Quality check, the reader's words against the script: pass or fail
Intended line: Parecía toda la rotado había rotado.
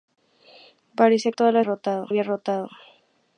pass